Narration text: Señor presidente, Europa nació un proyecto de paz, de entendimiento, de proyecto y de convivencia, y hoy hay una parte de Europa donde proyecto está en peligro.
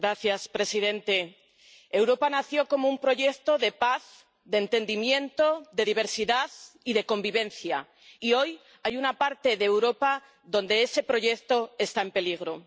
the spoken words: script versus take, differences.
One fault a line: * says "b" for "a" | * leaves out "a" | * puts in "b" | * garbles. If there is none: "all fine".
* puts in "como"
* says "diversidad" for "proyecto"
* puts in "ese"